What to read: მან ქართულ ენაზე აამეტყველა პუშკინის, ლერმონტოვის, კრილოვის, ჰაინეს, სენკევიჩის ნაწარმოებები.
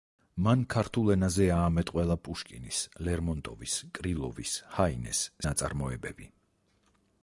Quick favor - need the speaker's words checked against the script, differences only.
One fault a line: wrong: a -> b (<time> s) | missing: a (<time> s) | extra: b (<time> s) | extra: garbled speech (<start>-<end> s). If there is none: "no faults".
missing: სენკევიჩის (5.2 s)